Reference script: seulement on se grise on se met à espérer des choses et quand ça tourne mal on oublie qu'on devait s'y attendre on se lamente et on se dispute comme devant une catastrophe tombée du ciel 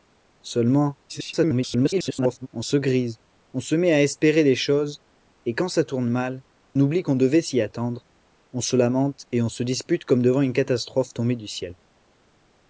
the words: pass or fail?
fail